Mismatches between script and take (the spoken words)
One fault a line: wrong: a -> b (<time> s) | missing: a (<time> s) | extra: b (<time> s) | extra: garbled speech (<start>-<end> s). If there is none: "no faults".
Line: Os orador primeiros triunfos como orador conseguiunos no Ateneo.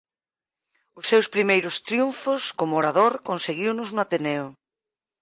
wrong: orador -> seus (1.1 s)